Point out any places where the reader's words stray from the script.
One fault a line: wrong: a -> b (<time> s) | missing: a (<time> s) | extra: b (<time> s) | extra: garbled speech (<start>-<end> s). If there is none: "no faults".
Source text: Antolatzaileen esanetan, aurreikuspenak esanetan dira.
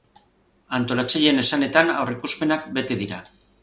wrong: esanetan -> bete (2.8 s)